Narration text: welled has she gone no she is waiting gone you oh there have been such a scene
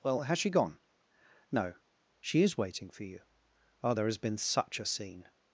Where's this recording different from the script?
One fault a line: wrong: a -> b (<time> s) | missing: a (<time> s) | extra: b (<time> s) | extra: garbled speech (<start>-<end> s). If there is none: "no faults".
wrong: welled -> well (0.0 s)
wrong: gone -> for (2.9 s)
wrong: have -> has (4.1 s)